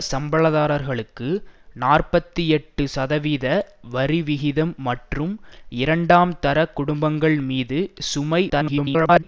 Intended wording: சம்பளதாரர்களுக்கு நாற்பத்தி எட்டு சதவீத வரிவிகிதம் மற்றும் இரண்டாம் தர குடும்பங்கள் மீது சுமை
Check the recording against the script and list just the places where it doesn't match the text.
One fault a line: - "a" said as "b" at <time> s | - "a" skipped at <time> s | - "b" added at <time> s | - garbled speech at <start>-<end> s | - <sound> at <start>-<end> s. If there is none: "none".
- garbled speech at 8.5-9.2 s